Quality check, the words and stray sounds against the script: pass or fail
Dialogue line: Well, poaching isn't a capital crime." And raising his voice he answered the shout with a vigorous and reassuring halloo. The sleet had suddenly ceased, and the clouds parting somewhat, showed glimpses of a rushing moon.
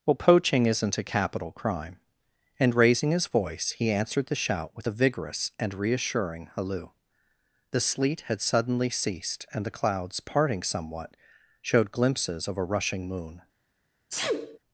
fail